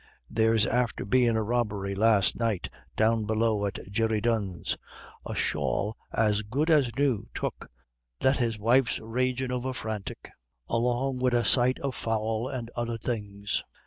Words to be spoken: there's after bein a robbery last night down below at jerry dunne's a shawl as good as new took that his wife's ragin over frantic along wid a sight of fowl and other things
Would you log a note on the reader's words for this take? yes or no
no